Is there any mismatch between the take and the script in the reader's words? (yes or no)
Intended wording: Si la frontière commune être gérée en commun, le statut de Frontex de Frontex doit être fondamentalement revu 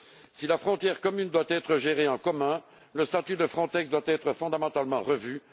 yes